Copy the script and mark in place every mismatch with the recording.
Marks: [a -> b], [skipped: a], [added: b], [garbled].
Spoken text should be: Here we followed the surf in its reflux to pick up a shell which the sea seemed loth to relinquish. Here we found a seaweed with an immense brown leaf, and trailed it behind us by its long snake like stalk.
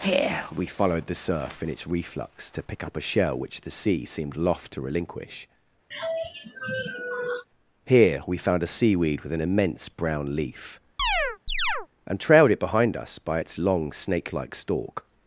Here we followed the surf in its reflux to pick up a shell which the sea seemed loth to relinquish. Here we found a seaweed with an immense brown leaf, and trailed it behind us by its long snake like stalk.